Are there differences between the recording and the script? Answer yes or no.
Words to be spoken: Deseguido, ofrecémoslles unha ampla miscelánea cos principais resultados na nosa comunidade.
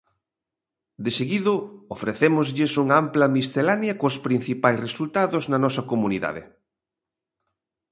no